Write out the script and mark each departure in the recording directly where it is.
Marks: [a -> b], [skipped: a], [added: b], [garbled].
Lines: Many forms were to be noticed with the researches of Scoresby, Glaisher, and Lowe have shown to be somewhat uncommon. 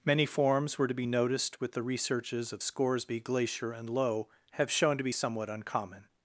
Many forms were to be noticed with the researches of Scoresby, Glaisher, and Lowe have shown to be somewhat uncommon.